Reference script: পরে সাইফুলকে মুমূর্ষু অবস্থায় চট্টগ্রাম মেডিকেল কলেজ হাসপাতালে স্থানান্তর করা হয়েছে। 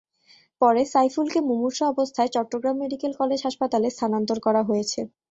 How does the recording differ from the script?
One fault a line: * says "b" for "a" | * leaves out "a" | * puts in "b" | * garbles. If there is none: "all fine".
all fine